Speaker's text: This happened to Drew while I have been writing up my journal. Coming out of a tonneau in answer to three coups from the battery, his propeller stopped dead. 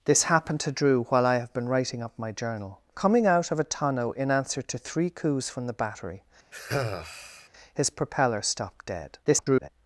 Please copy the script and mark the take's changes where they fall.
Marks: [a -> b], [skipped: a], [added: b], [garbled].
This happened to Drew while I have been writing up my journal. Coming out of a tonneau in answer to three coups from the battery, his propeller stopped dead. [garbled]